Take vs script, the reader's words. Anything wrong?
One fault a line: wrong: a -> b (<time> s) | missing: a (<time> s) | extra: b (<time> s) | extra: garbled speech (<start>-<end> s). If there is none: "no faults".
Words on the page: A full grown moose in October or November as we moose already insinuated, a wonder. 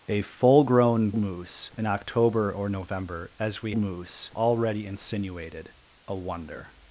no faults